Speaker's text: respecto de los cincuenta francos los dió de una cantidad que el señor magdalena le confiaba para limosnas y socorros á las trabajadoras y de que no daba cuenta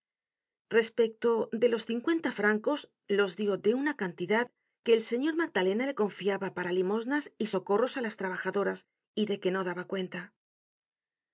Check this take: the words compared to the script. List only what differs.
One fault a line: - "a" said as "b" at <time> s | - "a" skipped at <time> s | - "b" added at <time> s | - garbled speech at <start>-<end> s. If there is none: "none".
none